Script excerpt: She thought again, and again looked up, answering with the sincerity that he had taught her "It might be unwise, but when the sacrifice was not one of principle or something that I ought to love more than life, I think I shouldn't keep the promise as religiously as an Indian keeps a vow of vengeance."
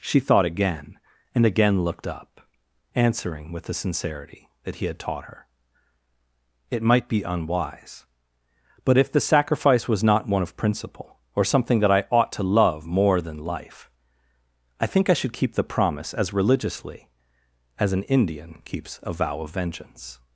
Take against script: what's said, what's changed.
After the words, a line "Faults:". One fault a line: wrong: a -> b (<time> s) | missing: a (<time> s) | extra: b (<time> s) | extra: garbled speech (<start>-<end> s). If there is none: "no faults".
She thought again, and again looked up, answering with the sincerity that he had taught her "It might be unwise, but if the sacrifice was not one of principle or something that I ought to love more than life, I think I should keep the promise as religiously as an Indian keeps a vow of vengeance."
Faults:
wrong: when -> if (9.0 s)
wrong: shouldn't -> should (15.1 s)